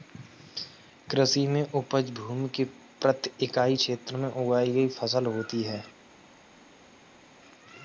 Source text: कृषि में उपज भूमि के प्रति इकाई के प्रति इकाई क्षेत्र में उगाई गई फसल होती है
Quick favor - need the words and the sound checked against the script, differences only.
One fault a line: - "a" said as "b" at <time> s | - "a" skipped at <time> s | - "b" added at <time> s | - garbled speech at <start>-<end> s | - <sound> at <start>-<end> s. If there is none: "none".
- "के प्रति इकाई" skipped at 3.8 s